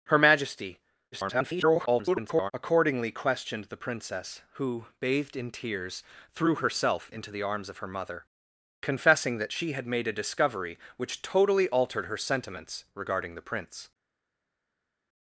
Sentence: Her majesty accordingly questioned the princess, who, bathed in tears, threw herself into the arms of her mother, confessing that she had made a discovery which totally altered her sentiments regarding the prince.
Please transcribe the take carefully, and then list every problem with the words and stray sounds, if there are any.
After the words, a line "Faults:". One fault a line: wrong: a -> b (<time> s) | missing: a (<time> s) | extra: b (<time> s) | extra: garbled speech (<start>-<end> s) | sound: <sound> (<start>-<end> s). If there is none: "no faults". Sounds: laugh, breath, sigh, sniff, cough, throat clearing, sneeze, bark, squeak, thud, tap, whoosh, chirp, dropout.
Her majesty [garbled] accordingly questioned the princess, who, bathed in tears, threw herself into the arms of her mother, confessing that she had made a discovery which totally altered her sentiments regarding the prince.
Faults:
extra: garbled speech (1.1-2.5 s)